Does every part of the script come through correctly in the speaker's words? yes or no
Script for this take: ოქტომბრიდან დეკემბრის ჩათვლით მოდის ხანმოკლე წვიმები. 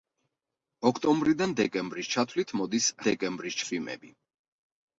no